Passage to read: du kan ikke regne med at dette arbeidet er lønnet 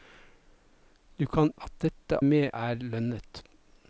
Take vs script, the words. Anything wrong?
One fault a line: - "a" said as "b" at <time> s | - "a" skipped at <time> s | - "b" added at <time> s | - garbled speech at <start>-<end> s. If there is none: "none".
- "ikke regne med" skipped at 1.5 s
- "arbeidet" said as "med" at 2.2 s